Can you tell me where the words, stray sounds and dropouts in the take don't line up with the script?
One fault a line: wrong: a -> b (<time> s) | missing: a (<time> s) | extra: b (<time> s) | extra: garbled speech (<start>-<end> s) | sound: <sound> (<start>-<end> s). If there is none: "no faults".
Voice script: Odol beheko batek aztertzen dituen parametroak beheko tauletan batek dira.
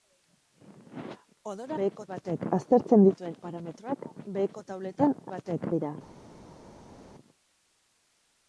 no faults